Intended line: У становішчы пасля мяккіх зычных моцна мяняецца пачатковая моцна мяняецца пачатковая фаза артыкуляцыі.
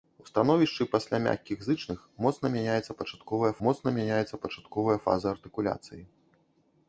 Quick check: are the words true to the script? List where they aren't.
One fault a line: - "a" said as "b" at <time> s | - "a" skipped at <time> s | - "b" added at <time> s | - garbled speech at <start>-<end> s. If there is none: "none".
none